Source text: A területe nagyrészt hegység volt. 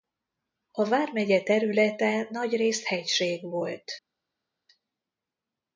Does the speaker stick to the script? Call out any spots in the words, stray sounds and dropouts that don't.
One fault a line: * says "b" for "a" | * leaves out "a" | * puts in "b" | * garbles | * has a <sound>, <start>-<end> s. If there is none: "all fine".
* puts in "vármegye"